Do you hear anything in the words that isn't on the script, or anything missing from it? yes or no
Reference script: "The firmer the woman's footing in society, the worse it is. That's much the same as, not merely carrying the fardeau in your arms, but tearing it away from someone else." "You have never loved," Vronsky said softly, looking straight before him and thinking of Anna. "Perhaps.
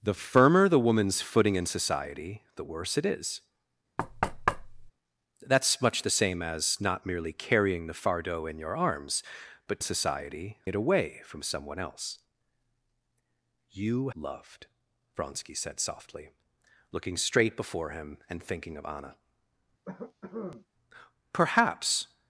yes